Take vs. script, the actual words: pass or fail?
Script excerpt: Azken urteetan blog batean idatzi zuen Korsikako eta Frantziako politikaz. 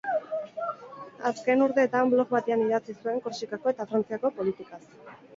pass